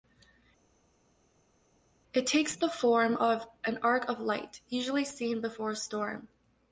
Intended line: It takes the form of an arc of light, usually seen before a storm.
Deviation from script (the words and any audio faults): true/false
false